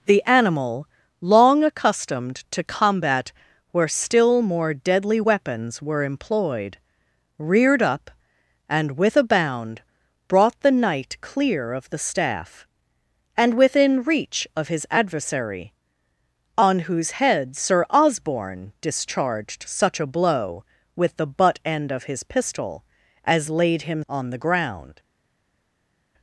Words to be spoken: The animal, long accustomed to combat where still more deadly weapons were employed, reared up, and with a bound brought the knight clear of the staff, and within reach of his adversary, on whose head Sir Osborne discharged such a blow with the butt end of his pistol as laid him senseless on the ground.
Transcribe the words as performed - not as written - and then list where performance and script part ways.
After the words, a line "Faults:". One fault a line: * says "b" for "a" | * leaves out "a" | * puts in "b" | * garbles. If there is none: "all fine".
The animal, long accustomed to combat where still more deadly weapons were employed, reared up, and with a bound brought the knight clear of the staff, and within reach of his adversary, on whose head Sir Osborne discharged such a blow with the butt end of his pistol as laid him on the ground.
Faults:
* leaves out "senseless"